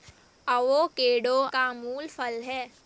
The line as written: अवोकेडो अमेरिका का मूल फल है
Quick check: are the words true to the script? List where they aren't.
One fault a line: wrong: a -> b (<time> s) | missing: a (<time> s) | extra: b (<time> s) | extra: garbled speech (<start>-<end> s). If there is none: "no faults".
missing: अमेरिका (1.4 s)